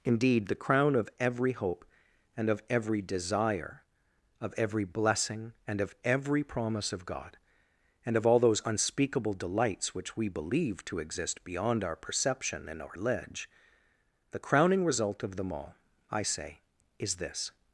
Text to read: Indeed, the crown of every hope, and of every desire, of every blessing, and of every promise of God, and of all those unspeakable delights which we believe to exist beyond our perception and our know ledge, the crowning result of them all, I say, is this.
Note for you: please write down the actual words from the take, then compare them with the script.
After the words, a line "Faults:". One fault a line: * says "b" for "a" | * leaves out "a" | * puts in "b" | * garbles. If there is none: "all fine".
Indeed, the crown of every hope, and of every desire, of every blessing, and of every promise of God, and of all those unspeakable delights which we believe to exist beyond our perception and our ledge, the crowning result of them all, I say, is this.
Faults:
* leaves out "know"